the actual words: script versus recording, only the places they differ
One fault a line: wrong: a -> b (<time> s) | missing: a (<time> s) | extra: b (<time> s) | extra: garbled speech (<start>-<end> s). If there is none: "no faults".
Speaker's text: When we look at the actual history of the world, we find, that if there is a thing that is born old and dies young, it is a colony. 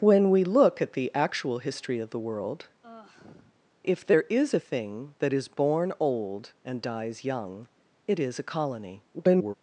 missing: we find that (2.7 s)
extra: garbled speech (9.1-9.5 s)